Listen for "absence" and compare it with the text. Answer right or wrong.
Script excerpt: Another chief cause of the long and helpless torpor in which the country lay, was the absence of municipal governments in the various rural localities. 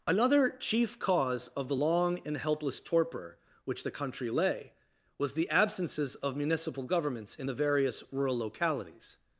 wrong